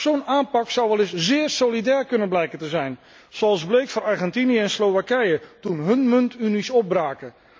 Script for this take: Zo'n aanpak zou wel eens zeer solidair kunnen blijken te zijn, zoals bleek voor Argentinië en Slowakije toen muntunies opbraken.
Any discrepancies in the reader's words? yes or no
yes